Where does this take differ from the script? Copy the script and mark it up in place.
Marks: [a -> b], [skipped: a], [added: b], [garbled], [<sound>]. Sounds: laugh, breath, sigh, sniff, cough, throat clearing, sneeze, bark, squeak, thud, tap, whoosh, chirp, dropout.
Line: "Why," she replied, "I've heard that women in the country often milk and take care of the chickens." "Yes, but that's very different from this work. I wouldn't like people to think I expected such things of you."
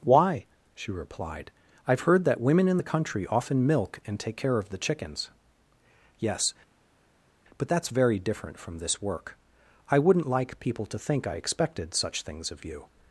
"Why," she replied, "I've heard that women in the country often milk and take care of the chickens." "Yes, but that's very different from this work. I wouldn't like people to think I expected such things of you."